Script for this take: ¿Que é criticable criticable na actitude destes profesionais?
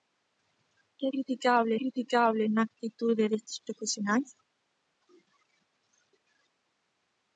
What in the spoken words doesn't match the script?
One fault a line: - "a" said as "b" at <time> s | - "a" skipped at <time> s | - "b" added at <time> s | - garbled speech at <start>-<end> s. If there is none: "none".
none